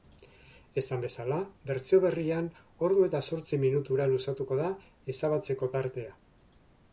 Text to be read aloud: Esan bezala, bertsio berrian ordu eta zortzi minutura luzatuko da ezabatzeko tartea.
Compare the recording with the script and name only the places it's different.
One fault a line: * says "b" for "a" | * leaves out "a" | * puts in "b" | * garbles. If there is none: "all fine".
all fine